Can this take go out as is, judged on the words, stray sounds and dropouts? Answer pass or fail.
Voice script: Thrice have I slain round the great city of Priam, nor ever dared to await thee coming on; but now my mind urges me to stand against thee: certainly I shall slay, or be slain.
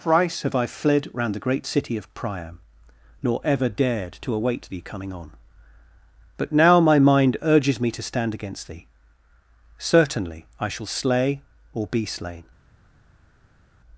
fail